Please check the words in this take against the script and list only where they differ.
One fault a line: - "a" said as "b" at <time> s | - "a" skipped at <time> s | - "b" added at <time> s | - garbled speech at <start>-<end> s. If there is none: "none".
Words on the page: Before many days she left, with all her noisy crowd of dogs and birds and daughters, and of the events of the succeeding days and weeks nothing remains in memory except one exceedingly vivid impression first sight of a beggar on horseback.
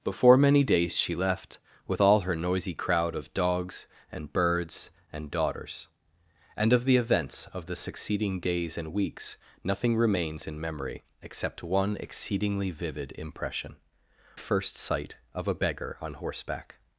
none